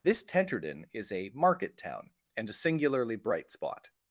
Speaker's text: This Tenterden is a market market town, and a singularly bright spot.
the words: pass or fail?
fail